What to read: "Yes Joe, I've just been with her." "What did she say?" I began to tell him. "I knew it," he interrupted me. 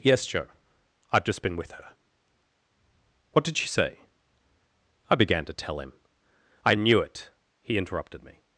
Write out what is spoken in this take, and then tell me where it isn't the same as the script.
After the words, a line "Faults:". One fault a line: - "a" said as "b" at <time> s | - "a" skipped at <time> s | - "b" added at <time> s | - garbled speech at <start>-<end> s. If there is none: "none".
"Yes Joe, I've just been with her." "What did she say?" I began to tell him. "I knew it," he interrupted me.
Faults:
none